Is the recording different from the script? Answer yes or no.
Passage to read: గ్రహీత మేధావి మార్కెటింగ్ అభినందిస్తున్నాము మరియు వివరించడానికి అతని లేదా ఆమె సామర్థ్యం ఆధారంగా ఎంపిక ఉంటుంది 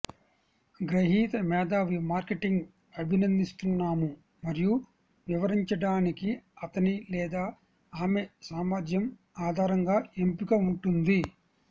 no